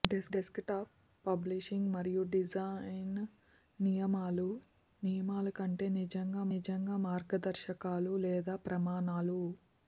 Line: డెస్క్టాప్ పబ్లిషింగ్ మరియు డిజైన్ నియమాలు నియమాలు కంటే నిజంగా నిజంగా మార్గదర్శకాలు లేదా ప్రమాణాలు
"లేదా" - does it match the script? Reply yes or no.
yes